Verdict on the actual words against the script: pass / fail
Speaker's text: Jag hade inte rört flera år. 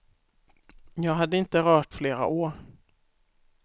pass